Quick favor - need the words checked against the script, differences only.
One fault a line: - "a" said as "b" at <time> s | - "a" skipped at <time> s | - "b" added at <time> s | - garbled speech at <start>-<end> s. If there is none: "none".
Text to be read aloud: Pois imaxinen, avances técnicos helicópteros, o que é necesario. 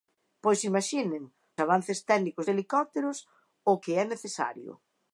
none